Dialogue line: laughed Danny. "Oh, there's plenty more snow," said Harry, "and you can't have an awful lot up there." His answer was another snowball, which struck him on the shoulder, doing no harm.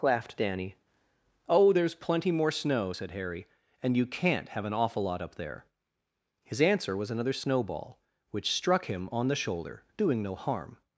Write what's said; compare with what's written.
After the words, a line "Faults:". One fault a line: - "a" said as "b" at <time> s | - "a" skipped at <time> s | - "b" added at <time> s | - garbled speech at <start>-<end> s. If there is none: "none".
laughed Danny. "Oh, there's plenty more snow," said Harry, "and you can't have an awful lot up there." His answer was another snowball, which struck him on the shoulder, doing no harm.
Faults:
none